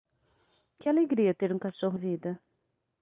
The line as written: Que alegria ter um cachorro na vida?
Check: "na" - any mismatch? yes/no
yes